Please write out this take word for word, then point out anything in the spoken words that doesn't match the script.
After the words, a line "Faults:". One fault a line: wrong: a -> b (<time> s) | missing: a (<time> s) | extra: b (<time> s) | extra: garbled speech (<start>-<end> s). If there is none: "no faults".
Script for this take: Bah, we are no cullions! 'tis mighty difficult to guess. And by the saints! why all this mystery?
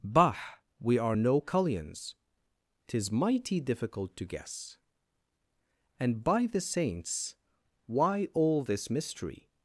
Bah, we are no cullions! 'tis mighty difficult to guess. And by the saints! why all this mystery?
Faults:
no faults